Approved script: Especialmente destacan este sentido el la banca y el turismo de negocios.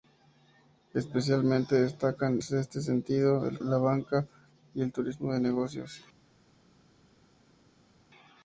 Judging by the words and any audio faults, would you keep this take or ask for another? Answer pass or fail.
pass